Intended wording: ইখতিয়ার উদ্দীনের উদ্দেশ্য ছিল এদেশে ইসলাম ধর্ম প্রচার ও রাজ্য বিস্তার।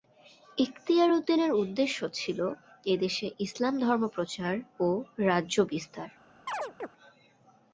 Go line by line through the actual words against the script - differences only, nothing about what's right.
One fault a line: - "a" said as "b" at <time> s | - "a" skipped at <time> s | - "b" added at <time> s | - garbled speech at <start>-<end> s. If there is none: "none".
none